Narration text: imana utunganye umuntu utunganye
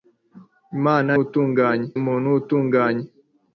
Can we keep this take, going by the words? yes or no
yes